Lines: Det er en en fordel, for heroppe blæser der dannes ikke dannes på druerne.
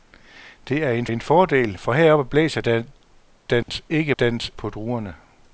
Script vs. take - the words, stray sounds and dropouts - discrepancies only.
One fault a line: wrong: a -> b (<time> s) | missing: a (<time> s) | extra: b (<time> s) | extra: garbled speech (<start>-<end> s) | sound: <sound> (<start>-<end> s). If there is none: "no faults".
sound: dropout (3.6-3.7 s)